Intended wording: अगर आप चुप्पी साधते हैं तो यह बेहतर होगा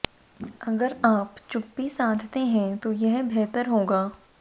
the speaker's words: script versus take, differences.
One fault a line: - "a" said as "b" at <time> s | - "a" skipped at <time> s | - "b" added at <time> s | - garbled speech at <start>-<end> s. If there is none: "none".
none